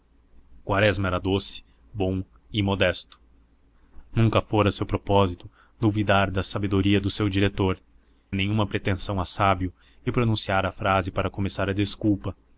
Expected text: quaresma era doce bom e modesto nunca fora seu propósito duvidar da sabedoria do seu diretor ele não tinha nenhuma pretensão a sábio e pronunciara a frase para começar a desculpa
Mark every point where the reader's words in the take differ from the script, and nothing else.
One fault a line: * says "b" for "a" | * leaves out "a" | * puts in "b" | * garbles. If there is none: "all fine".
* leaves out "ele não tinha"